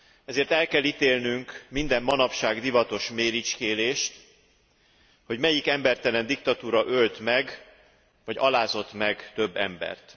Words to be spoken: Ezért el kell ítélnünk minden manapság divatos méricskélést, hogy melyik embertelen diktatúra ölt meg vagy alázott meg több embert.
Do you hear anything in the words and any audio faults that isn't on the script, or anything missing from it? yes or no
no